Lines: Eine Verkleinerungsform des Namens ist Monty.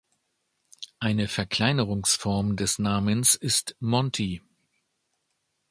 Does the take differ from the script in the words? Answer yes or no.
no